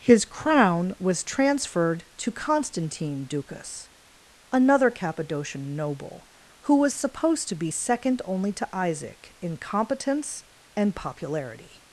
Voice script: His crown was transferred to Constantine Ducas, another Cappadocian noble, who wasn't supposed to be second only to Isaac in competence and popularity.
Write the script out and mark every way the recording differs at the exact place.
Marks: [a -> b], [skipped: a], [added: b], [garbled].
His crown was transferred to Constantine Ducas, another Cappadocian noble, who [wasn't -> was] supposed to be second only to Isaac in competence and popularity.